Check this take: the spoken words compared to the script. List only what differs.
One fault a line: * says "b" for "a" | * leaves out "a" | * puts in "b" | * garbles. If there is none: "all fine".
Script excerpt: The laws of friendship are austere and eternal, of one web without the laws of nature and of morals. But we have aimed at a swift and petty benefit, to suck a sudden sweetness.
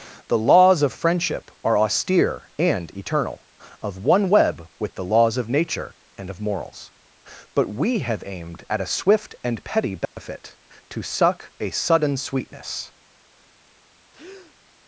* says "with" for "without"